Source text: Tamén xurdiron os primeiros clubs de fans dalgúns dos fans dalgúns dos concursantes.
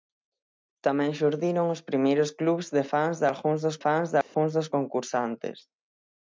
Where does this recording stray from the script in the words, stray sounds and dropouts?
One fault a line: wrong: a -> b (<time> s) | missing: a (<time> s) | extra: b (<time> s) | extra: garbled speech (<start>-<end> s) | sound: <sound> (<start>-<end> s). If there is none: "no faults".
sound: dropout (4.2-4.3 s)